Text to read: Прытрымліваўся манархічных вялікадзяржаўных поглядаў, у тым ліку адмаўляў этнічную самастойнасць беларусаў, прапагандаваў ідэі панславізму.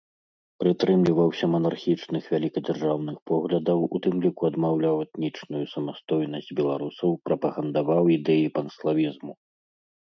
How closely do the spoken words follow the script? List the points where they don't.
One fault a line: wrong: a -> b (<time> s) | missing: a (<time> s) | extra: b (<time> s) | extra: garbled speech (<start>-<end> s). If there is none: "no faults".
no faults